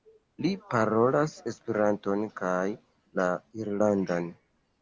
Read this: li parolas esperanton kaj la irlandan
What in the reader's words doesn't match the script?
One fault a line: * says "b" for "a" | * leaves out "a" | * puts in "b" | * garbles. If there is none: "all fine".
all fine